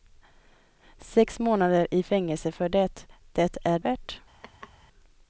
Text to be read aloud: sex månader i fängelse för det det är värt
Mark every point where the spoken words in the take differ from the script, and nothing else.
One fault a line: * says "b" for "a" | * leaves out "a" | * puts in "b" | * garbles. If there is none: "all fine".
all fine